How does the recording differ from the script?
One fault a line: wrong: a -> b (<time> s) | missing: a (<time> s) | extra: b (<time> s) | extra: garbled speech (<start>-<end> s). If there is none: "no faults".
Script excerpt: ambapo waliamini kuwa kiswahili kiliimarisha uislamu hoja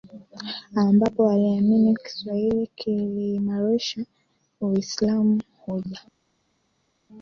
missing: kuwa (1.9 s)